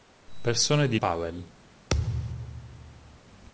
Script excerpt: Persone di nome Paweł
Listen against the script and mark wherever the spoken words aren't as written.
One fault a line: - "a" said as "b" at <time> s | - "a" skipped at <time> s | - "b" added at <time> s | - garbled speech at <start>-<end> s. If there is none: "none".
- "nome" skipped at 1.0 s